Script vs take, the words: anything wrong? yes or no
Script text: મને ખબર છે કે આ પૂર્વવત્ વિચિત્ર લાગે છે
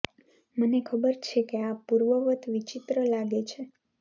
no